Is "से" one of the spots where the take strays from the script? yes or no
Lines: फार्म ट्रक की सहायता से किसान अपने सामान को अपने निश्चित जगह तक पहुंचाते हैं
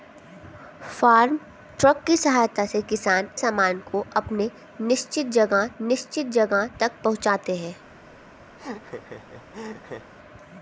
no